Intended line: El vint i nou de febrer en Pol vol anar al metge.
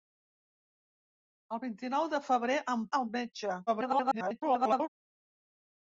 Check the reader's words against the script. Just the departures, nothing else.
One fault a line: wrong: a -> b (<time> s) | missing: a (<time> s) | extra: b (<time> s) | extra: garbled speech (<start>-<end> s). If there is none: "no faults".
missing: Pol vol anar (2.9 s)
extra: garbled speech (3.7-4.9 s)